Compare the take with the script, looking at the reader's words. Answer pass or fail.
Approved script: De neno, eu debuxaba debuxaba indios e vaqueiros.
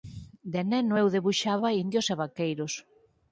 fail